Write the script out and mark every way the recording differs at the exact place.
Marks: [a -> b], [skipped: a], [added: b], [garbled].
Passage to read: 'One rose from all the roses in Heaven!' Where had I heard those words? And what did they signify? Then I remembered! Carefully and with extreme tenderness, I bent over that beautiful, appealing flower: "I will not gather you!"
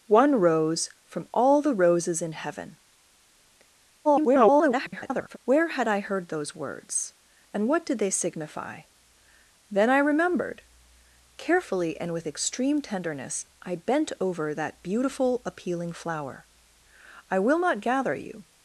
'One rose from all the roses in Heaven!' [garbled] Where had I heard those words? And what did they signify? Then I remembered! Carefully and with extreme tenderness, I bent over that beautiful, appealing flower: "I will not gather you!"